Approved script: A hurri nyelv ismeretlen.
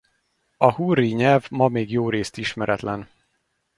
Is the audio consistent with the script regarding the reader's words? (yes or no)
no